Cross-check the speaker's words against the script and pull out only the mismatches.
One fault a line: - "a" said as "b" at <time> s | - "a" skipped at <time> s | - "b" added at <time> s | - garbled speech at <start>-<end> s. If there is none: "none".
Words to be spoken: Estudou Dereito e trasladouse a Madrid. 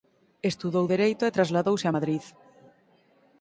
none